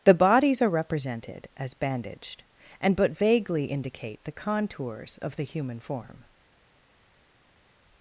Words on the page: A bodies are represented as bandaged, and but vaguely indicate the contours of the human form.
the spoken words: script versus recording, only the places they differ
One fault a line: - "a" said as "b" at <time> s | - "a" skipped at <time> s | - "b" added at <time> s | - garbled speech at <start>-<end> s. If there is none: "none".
- "A" said as "The" at 0.0 s